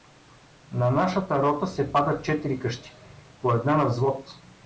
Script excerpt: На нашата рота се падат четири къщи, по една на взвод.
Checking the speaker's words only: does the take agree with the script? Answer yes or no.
yes